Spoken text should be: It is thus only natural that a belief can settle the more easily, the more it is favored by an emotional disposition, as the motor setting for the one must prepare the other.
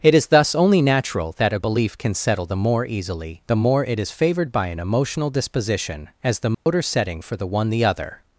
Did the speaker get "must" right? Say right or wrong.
wrong